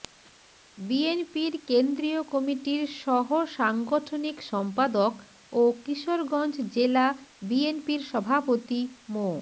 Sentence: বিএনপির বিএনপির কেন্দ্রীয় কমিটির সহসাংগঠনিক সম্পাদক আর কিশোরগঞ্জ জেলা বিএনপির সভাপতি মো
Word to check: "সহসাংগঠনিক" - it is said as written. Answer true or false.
true